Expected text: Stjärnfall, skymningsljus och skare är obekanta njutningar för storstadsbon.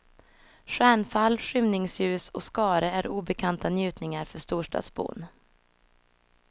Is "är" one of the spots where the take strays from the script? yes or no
no